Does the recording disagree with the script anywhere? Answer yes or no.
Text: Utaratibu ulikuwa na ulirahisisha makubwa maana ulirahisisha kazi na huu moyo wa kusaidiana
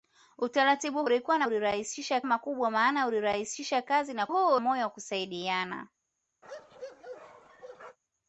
no